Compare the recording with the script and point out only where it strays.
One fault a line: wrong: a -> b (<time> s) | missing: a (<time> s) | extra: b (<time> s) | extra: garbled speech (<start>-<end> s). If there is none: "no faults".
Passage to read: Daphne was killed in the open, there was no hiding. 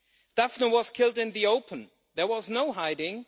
no faults